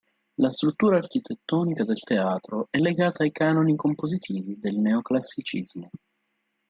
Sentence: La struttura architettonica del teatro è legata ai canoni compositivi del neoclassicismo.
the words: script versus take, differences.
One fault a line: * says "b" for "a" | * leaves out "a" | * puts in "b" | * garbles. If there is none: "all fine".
all fine